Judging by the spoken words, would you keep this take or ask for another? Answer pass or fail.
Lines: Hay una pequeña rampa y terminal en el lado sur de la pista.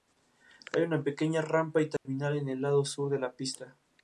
pass